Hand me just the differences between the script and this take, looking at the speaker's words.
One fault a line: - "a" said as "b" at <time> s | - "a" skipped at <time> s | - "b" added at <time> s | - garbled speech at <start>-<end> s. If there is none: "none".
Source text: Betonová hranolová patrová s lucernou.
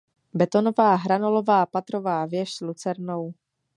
- "věž" added at 2.2 s